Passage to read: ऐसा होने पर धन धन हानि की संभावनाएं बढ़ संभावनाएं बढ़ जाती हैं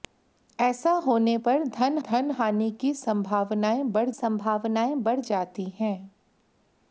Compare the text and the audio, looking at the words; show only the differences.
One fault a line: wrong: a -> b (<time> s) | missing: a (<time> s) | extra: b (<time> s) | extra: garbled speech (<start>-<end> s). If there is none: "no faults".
no faults